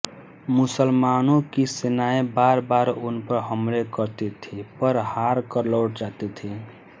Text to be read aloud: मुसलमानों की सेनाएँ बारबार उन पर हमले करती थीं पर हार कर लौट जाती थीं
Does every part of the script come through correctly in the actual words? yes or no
yes